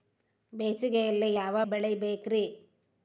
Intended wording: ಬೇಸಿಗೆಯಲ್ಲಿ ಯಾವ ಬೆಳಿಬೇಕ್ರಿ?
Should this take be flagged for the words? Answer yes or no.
no